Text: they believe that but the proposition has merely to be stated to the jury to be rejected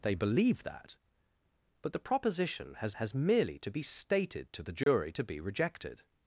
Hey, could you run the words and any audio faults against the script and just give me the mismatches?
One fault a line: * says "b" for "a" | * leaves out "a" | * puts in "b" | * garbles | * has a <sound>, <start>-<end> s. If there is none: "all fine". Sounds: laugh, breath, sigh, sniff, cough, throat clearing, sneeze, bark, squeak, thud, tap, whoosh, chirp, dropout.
* puts in "has"
* has a dropout, 4.8-4.9 s